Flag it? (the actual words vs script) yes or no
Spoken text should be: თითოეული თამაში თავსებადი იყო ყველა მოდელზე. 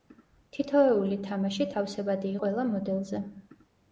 yes